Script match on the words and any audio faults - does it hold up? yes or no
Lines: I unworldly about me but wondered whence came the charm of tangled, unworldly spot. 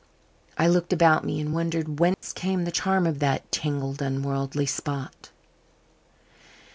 no